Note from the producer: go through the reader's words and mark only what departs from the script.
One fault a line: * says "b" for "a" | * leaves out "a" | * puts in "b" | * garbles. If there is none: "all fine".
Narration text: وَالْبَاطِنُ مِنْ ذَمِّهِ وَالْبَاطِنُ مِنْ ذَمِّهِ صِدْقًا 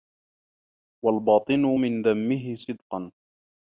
* leaves out "وَالْبَاطِنُ مِنْ ذَمِّهِ"